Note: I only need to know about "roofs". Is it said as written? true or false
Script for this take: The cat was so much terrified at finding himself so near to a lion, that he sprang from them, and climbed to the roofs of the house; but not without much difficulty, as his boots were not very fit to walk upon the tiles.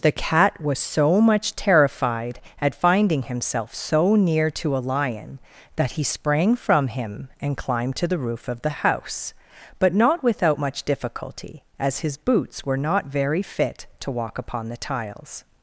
false